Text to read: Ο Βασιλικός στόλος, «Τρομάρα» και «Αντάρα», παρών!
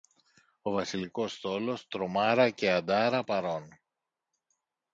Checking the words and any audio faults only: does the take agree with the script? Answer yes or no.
yes